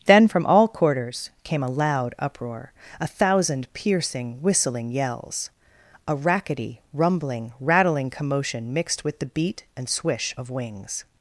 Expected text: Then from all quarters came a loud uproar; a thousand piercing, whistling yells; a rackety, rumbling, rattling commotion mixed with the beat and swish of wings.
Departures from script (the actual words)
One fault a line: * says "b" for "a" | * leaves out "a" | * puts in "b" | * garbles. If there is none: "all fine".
all fine